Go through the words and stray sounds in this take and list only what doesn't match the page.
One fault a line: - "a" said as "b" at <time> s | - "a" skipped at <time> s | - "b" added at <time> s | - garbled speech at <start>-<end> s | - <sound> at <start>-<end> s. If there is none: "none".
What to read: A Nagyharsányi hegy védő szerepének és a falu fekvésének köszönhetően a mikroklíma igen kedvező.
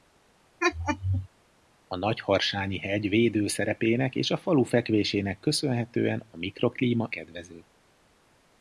- laugh at 0.6-1.3 s
- "igen" skipped at 7.1 s